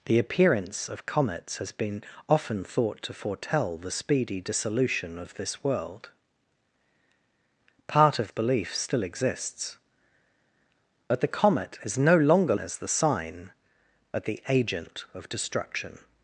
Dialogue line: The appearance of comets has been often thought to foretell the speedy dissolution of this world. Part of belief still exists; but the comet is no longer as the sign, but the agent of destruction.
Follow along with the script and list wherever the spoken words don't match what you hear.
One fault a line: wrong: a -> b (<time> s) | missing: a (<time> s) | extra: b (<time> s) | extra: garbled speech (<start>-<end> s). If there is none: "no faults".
no faults